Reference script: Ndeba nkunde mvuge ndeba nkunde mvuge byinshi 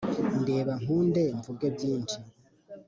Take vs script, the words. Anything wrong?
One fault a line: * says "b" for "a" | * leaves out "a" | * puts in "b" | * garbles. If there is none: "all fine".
* leaves out "ndeba nkunde mvuge"